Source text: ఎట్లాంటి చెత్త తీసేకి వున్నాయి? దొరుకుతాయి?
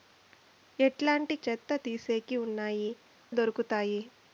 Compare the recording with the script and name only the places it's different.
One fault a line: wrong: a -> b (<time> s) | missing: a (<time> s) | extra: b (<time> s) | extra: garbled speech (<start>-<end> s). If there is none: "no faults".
no faults